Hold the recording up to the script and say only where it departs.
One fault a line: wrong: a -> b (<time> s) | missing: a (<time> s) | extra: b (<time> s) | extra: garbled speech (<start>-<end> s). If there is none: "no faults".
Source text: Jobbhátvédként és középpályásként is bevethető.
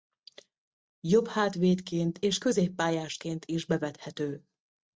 no faults